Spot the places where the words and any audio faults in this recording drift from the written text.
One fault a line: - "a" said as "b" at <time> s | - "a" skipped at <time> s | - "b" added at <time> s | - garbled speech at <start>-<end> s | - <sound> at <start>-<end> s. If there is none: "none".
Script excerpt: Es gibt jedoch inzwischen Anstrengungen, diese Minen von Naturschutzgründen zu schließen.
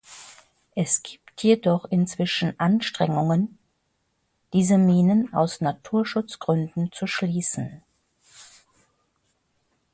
- "von" said as "aus" at 5.3 s